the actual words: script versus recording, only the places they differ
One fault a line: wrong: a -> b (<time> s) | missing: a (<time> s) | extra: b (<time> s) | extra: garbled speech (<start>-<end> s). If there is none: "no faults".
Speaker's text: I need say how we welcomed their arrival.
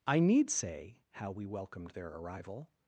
no faults